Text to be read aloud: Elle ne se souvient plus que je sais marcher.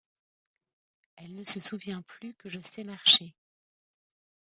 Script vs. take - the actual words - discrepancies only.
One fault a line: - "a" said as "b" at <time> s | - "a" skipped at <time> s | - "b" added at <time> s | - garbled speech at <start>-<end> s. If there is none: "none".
none